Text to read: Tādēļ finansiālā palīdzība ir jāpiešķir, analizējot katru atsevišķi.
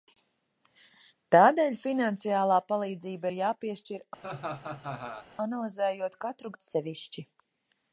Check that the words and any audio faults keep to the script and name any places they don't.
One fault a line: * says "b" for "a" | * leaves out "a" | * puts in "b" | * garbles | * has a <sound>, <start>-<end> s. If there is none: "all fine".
* has a laugh, 4.2-5.3 s